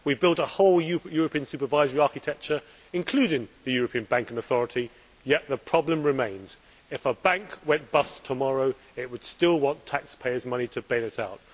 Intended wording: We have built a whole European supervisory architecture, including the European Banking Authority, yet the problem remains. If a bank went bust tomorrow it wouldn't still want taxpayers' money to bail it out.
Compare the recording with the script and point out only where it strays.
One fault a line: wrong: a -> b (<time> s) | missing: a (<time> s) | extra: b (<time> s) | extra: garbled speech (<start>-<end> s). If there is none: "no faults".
wrong: wouldn't -> would (9.1 s)